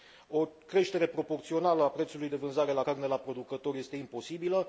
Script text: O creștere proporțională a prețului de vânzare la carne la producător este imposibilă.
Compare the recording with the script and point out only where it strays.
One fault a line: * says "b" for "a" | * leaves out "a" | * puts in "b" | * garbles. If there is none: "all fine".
all fine